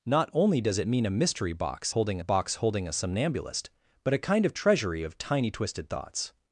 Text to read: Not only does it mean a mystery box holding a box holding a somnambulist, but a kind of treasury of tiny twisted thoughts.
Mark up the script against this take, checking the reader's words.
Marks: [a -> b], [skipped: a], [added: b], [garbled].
Not only does it mean a mystery box holding a box holding a somnambulist, but a kind of treasury of tiny twisted thoughts.